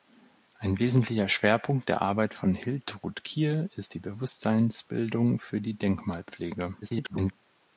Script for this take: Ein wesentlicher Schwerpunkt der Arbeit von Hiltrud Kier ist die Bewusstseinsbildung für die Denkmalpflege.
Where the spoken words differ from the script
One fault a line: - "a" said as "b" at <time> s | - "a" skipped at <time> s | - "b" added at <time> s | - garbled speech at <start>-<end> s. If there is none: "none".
- garbled speech at 6.8-7.3 s